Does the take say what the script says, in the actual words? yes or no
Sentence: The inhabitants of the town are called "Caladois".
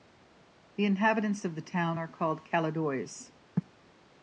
yes